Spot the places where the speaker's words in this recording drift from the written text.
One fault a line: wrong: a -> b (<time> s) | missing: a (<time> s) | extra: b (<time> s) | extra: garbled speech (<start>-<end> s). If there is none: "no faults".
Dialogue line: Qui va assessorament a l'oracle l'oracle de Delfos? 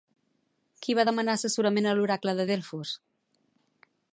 extra: demanar (1.1 s)
missing: l'oracle (2.4 s)